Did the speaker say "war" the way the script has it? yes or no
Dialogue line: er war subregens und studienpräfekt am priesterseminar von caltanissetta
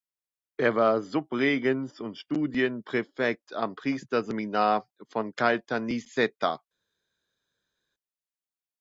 yes